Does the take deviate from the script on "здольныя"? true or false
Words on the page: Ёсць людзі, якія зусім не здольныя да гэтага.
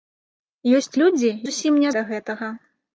true